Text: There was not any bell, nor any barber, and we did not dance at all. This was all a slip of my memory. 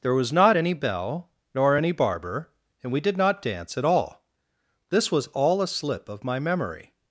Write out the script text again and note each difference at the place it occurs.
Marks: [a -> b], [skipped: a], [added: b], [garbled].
There was not any bell, nor any barber, and we did not dance at all. This was all a slip of my memory.